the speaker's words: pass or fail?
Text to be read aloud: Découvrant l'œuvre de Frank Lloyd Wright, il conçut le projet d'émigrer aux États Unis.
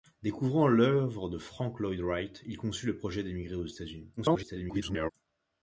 fail